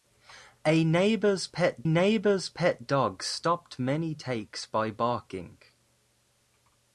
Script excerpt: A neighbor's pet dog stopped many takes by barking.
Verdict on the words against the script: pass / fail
fail